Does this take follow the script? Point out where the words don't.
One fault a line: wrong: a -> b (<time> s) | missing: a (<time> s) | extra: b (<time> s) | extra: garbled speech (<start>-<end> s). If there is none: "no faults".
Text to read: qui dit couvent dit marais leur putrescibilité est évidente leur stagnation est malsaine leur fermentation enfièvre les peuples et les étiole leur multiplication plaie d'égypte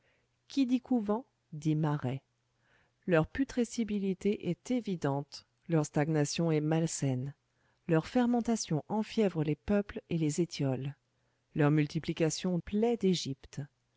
no faults